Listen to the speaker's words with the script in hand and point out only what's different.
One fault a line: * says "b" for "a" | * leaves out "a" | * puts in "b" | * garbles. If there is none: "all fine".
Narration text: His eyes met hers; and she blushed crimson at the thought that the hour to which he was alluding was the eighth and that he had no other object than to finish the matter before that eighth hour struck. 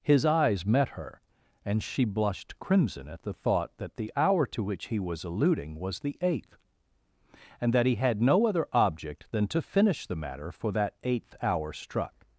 * says "her" for "hers"
* says "for" for "before"